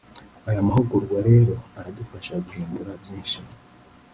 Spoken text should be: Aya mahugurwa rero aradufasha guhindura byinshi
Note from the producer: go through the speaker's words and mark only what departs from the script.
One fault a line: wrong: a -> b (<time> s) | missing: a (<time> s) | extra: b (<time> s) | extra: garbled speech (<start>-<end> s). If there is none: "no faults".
no faults